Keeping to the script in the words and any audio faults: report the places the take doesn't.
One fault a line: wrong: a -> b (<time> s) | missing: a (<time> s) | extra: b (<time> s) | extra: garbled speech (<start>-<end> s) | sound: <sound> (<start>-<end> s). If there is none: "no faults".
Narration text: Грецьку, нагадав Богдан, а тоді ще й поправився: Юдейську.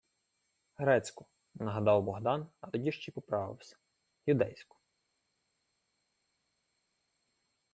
no faults